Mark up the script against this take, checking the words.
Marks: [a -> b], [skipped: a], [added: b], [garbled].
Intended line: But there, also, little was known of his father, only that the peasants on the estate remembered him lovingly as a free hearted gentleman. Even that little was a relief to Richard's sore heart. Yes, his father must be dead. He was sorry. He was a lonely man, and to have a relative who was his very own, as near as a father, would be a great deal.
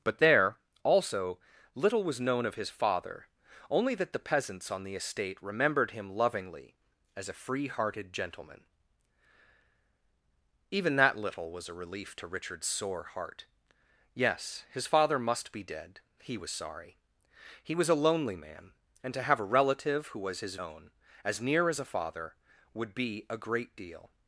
But there, also, little was known of his father, only that the peasants on the estate remembered him lovingly as a free hearted gentleman. Even that little was a relief to Richard's sore heart. Yes, his father must be dead. He was sorry. He was a lonely man, and to have a relative who was his [skipped: very] own, as near as a father, would be a great deal.